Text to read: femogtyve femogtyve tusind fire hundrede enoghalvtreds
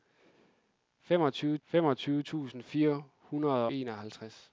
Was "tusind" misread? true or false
false